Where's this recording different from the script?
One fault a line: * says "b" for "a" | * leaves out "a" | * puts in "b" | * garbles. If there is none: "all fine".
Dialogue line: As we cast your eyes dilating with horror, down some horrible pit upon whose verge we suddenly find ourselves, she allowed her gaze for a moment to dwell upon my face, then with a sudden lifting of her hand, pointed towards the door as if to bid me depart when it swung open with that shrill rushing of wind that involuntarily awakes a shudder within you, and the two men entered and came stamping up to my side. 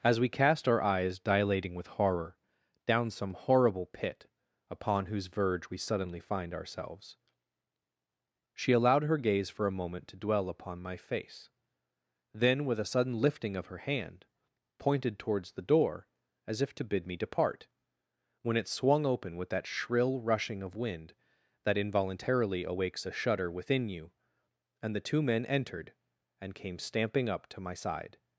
* says "our" for "your"